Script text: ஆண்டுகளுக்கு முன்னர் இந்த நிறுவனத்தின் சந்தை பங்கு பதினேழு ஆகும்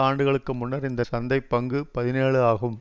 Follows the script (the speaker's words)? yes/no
no